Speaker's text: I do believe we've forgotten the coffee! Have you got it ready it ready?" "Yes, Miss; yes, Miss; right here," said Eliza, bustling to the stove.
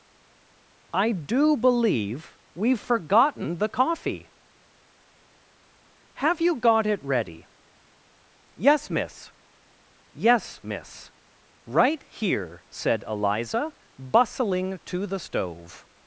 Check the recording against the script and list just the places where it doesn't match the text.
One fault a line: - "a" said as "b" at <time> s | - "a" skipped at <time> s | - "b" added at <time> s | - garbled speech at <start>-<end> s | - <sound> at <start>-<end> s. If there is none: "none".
- "it ready" skipped at 7.5 s